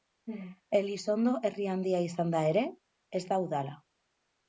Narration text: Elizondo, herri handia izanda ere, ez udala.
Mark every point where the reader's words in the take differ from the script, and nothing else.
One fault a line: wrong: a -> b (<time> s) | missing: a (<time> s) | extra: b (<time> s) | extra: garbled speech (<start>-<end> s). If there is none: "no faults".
extra: da (3.3 s)